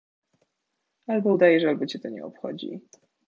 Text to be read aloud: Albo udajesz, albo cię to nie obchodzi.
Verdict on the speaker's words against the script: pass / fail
pass